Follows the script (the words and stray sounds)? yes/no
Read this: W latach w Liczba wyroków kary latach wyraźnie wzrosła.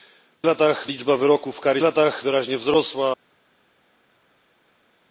yes